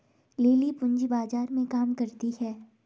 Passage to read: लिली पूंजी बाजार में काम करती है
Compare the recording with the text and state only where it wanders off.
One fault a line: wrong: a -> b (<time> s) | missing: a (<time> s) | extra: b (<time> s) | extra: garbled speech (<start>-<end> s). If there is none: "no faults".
no faults